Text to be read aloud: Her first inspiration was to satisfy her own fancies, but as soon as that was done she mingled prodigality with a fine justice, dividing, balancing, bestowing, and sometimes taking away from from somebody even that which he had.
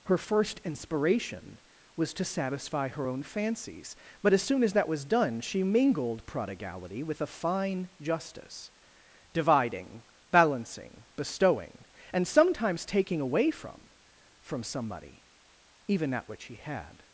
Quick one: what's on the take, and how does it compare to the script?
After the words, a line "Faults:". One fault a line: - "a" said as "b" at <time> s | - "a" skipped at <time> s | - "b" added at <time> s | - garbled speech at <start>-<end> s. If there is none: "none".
Her first inspiration was to satisfy her own fancies, but as soon as that was done she mingled prodigality with a fine justice, dividing, balancing, bestowing, and sometimes taking away from from somebody even that which he had.
Faults:
none